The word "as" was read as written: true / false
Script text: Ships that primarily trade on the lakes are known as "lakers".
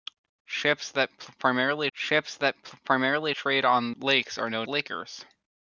false